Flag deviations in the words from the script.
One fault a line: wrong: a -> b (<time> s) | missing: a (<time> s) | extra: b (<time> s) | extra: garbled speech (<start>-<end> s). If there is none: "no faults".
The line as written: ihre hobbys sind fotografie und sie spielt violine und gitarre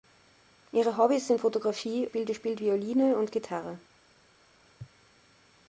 wrong: und -> spielt (2.0 s)